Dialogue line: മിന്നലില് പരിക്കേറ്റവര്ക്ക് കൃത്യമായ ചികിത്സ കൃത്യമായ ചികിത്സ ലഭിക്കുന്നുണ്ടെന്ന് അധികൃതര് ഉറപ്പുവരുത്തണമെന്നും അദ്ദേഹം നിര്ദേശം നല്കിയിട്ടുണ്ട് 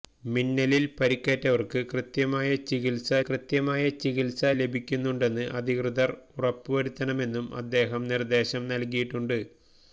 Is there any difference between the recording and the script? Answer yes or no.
no